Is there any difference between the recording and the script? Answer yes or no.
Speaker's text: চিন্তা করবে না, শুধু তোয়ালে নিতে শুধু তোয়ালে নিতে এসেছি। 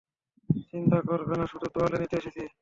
yes